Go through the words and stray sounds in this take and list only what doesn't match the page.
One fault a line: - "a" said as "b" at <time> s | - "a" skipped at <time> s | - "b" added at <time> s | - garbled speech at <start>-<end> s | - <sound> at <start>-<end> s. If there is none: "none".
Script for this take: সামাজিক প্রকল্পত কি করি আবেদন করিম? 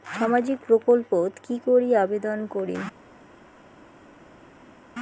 none